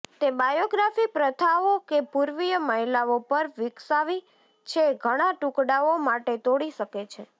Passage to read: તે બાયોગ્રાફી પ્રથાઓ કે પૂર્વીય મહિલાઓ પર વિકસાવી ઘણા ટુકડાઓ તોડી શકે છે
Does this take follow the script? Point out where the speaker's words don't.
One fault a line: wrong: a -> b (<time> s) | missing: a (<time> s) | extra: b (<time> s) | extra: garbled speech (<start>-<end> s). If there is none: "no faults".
extra: છે (4.7 s)
extra: માટે (6.0 s)